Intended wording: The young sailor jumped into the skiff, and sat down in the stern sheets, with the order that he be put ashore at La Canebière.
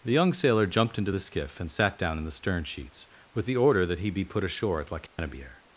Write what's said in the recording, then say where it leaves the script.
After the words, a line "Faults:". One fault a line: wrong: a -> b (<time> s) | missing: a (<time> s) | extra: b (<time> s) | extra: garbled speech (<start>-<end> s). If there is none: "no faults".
The young sailor jumped into the skiff, and sat down in the stern sheets, with the order that he be put ashore at La Canebière.
Faults:
no faults